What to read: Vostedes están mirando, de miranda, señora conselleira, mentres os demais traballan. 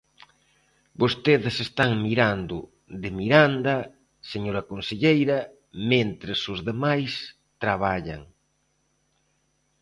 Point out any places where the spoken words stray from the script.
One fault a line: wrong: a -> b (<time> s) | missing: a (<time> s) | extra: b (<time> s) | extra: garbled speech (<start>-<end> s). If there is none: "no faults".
no faults